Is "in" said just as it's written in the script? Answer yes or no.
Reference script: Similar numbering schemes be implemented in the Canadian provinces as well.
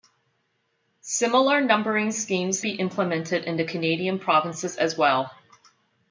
yes